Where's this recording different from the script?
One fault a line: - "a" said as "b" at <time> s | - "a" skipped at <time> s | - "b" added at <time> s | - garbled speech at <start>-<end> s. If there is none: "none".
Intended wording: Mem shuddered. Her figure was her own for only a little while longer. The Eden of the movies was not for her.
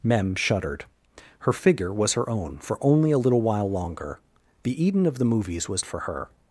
- "not" skipped at 5.8 s